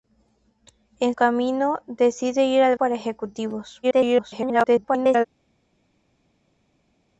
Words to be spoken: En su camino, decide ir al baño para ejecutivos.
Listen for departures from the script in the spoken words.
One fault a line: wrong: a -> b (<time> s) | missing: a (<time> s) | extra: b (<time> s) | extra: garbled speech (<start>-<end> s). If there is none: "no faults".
missing: su (1.1 s)
missing: baño (2.8 s)
extra: garbled speech (3.8-5.3 s)